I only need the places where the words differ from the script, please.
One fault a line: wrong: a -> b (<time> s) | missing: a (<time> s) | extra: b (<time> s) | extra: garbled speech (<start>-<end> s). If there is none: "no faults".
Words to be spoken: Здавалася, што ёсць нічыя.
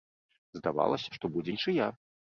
wrong: ёсць -> будзе (1.4 s)